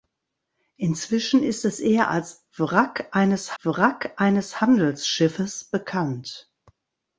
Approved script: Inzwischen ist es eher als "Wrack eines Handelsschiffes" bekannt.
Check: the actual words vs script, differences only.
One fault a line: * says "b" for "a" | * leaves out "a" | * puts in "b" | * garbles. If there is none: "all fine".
* puts in "wrack eines"